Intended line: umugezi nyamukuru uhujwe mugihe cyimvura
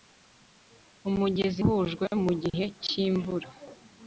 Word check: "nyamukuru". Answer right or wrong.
wrong